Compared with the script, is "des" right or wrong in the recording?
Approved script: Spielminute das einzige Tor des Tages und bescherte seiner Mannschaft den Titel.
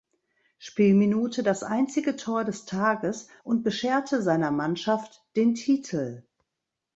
right